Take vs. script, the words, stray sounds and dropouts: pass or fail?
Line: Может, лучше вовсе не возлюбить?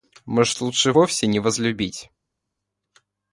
pass